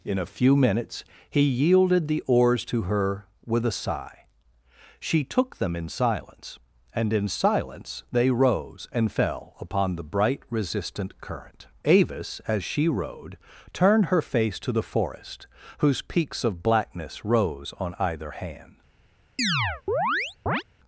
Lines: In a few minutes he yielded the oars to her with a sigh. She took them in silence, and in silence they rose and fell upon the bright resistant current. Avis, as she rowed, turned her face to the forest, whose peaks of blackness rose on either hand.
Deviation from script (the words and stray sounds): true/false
true